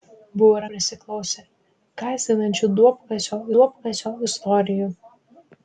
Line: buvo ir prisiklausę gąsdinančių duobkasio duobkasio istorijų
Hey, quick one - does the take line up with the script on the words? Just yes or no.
yes